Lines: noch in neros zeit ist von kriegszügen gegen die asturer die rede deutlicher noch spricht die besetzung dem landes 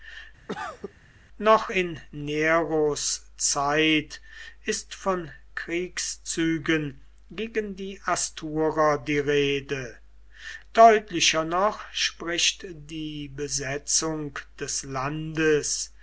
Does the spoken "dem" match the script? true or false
false